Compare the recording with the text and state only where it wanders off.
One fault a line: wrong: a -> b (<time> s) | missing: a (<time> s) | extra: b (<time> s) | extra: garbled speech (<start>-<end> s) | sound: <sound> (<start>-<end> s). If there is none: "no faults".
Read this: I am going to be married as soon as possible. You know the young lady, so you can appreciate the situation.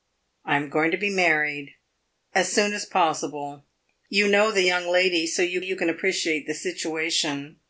extra: you (5.6 s)